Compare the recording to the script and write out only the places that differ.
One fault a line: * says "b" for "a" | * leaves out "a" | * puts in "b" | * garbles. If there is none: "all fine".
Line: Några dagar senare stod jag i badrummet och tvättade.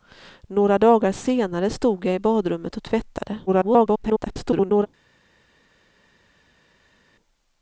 * garbles